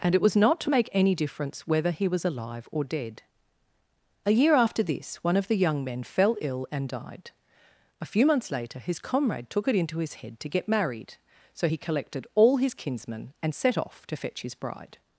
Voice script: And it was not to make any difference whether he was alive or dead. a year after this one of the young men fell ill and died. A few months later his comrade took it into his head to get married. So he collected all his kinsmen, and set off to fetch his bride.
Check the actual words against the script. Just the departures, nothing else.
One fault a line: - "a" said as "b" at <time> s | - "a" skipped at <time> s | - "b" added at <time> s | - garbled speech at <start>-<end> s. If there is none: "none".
none